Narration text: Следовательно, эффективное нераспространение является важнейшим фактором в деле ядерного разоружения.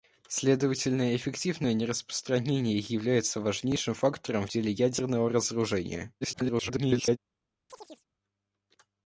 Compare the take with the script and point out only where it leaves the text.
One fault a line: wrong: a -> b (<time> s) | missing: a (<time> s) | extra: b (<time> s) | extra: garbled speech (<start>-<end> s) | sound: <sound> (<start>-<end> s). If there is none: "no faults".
extra: garbled speech (6.2-7.2 s)
sound: chirp (7.7-8.1 s)